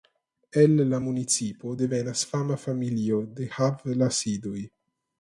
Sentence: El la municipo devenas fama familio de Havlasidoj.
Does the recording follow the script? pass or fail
pass